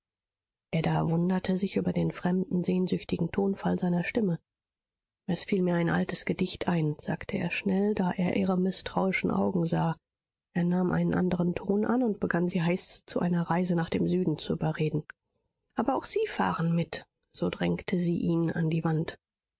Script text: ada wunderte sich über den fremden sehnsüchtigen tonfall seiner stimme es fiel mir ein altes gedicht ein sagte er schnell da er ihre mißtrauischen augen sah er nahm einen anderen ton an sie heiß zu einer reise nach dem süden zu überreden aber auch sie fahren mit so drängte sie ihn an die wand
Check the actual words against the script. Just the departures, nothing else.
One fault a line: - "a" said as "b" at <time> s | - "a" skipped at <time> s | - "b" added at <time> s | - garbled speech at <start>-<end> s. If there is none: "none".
- "und begann" added at 12.0 s